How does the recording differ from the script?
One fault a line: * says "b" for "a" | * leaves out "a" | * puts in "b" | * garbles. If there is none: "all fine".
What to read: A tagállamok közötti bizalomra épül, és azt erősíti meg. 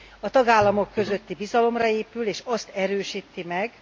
all fine